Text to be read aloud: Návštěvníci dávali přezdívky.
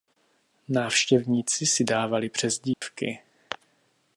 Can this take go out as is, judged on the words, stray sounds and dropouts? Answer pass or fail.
fail